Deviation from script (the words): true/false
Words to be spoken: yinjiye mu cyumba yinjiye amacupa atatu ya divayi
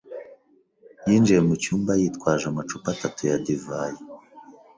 true